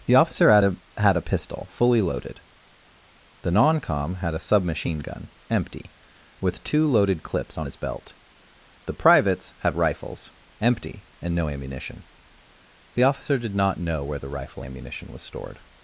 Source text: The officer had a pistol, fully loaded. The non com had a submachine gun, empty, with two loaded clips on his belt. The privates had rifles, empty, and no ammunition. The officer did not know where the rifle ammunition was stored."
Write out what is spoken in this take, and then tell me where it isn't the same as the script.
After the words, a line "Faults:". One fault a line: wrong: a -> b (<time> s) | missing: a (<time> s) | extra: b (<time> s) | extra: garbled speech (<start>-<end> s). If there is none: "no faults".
The officer had a had a pistol, fully loaded. The non com had a submachine gun, empty, with two loaded clips on his belt. The privates had rifles, empty, and no ammunition. The officer did not know where the rifle ammunition was stored."
Faults:
extra: had a (1.0 s)